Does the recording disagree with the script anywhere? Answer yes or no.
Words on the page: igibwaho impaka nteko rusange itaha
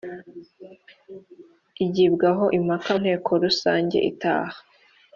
no